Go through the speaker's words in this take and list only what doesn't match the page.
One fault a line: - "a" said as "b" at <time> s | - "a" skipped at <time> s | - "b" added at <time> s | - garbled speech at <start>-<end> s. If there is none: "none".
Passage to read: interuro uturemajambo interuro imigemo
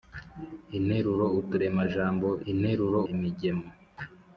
none